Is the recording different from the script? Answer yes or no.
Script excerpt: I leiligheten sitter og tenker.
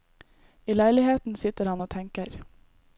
yes